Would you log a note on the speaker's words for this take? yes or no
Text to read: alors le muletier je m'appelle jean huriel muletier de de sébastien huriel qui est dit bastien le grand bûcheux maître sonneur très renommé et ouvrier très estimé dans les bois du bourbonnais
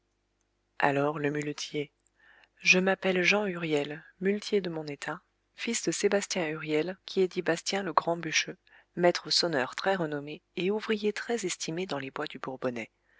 yes